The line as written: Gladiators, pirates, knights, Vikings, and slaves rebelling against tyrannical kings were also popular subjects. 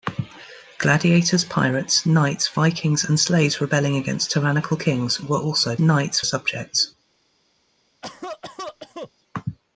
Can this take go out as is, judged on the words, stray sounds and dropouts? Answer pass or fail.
fail